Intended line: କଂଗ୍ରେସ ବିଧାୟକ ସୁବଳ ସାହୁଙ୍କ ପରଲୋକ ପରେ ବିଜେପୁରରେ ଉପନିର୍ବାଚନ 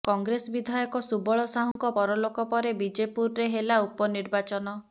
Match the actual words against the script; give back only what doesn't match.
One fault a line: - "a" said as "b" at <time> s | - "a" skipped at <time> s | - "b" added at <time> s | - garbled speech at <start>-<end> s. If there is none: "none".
- "ହେଲା" added at 3.5 s